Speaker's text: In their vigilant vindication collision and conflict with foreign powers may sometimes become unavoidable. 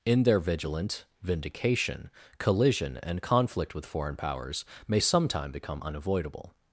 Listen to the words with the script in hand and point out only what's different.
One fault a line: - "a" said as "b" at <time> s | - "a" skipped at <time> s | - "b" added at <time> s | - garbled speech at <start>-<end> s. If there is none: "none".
- "sometimes" said as "sometime" at 5.0 s